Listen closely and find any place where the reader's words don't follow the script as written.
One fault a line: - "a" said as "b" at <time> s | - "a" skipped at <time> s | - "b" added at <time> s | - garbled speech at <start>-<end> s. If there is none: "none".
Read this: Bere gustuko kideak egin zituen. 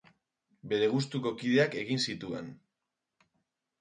none